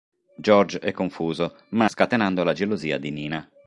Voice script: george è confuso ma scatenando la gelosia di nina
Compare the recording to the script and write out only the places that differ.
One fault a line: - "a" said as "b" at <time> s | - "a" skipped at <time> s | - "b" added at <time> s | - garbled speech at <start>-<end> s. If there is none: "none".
none